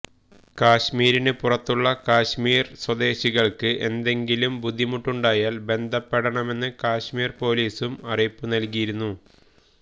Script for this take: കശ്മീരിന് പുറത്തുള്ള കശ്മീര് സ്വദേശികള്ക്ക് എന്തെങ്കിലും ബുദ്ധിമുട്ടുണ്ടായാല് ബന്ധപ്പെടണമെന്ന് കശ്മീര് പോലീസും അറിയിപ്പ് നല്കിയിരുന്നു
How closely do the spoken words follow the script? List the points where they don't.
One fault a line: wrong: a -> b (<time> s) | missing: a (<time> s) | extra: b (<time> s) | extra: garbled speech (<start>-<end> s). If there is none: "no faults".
no faults